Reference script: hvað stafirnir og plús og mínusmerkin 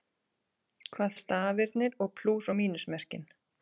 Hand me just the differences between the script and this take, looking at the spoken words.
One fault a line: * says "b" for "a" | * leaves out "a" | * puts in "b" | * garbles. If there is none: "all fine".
all fine